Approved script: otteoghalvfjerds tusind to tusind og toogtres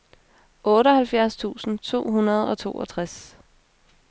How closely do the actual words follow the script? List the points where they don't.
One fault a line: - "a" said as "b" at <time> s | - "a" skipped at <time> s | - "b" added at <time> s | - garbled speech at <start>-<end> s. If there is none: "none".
- "tusind" said as "hundrede" at 2.1 s